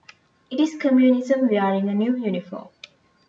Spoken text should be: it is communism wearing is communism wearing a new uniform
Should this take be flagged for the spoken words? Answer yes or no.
yes